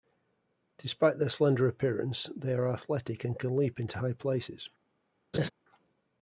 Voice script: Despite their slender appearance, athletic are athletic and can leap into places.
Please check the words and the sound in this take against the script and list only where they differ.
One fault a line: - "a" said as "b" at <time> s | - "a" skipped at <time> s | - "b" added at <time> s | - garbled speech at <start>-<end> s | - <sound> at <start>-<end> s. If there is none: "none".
- "athletic" said as "they" at 2.4 s
- "high" added at 4.0 s
- laugh at 5.3-5.5 s